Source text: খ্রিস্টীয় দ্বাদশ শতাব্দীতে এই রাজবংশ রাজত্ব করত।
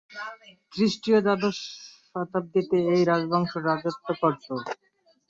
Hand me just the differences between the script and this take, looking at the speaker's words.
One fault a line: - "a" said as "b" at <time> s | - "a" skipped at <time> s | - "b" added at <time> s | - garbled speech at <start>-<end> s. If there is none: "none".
none